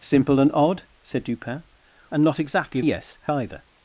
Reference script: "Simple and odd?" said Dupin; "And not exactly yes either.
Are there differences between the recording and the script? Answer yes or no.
no